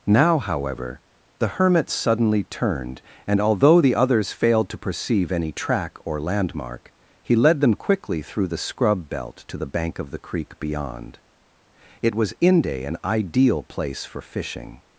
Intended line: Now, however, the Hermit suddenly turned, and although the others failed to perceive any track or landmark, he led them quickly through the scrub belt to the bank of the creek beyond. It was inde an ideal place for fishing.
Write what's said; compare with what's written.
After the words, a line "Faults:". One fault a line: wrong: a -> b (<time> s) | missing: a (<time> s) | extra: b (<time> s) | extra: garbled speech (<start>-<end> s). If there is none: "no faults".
Now, however, the Hermit suddenly turned, and although the others failed to perceive any track or landmark, he led them quickly through the scrub belt to the bank of the creek beyond. It was inde an ideal place for fishing.
Faults:
no faults